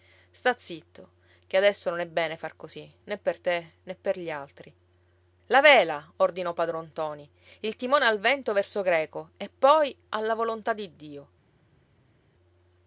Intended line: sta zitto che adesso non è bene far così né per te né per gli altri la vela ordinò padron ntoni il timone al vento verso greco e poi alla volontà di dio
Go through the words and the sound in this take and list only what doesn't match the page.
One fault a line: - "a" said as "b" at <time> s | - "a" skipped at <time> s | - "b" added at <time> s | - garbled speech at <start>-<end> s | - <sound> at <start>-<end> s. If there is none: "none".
none